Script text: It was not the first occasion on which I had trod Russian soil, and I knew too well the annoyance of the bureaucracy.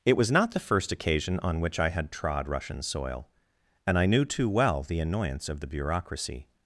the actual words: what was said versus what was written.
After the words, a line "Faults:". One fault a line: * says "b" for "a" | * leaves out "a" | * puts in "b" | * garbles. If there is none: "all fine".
It was not the first occasion on which I had trod Russian soil, and I knew too well the annoyance of the bureaucracy.
Faults:
all fine